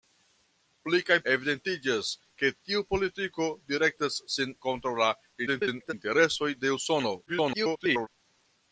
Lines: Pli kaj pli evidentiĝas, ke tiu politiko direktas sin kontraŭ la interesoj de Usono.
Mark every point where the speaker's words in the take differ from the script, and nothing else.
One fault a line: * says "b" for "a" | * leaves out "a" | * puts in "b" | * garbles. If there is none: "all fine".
* leaves out "pli"
* garbles
* garbles